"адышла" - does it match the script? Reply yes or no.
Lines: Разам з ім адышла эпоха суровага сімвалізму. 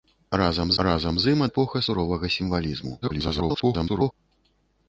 no